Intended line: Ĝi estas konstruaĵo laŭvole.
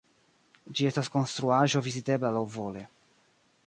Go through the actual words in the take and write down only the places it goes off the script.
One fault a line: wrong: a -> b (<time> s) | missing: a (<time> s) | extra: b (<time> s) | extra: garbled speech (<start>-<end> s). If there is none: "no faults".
extra: vizitebla (1.9 s)